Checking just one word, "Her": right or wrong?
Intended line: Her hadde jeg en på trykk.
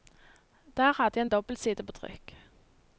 wrong